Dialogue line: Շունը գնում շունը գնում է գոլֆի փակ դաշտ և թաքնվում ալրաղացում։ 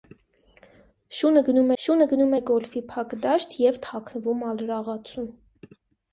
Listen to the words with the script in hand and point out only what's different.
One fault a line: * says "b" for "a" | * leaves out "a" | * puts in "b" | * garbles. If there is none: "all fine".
all fine